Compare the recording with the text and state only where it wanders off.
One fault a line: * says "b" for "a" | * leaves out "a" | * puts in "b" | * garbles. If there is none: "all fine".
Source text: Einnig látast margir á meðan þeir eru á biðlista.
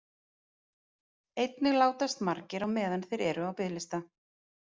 all fine